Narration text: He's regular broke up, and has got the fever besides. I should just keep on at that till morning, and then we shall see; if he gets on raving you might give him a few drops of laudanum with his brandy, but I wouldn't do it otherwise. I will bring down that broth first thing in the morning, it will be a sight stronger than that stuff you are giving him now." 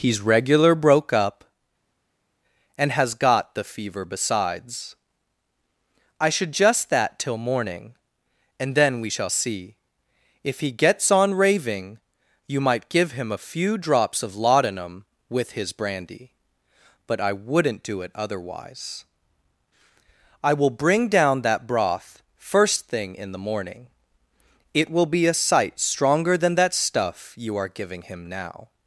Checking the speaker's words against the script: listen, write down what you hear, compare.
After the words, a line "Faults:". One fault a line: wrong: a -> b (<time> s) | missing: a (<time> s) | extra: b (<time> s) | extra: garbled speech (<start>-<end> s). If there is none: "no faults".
He's regular broke up, and has got the fever besides. I should just that till morning, and then we shall see; if he gets on raving you might give him a few drops of laudanum with his brandy, but I wouldn't do it otherwise. I will bring down that broth first thing in the morning, it will be a sight stronger than that stuff you are giving him now."
Faults:
missing: keep on at (6.9 s)